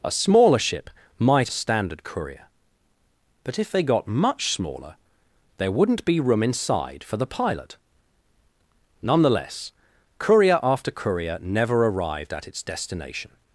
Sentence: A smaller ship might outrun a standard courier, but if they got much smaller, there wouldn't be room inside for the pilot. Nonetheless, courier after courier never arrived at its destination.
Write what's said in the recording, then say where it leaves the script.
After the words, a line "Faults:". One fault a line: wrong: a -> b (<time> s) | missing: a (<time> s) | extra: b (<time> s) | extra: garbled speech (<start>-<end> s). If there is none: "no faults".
A smaller ship might a standard courier, but if they got much smaller, there wouldn't be room inside for the pilot. Nonetheless, courier after courier never arrived at its destination.
Faults:
missing: outrun (1.5 s)